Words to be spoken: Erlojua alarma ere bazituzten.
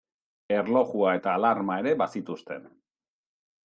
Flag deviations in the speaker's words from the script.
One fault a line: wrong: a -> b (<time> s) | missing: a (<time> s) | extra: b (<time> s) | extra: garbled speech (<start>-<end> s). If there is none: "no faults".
extra: eta (1.2 s)